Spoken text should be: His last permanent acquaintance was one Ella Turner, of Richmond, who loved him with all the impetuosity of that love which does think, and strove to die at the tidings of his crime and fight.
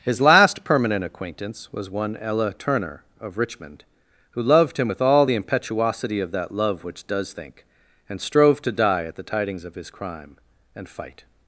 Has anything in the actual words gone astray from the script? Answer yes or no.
no